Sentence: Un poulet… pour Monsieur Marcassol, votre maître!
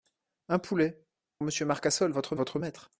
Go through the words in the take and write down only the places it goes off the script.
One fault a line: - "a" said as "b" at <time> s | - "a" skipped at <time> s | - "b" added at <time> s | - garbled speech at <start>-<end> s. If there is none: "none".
- "pour" skipped at 1.1 s
- "votre" added at 2.3 s